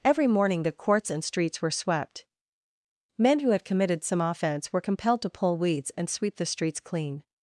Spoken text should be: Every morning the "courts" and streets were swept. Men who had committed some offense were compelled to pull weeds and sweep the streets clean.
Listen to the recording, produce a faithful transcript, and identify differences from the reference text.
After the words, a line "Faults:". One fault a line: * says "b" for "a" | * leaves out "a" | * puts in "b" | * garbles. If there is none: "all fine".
Every morning the "courts" and streets were swept. Men who had committed some offense were compelled to pull weeds and sweep the streets clean.
Faults:
all fine